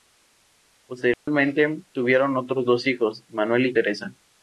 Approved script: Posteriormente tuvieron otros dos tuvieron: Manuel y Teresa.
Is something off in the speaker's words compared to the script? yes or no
yes